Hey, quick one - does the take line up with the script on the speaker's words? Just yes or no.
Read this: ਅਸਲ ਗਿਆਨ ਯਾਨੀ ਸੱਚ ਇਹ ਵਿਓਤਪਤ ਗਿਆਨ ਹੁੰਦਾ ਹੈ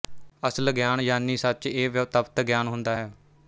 yes